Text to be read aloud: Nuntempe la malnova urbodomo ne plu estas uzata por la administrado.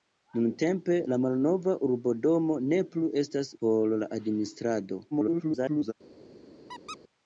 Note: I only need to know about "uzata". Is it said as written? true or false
false